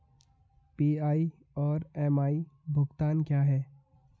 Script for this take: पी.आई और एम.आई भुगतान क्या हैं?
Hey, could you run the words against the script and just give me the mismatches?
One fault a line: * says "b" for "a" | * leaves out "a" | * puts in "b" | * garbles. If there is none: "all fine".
all fine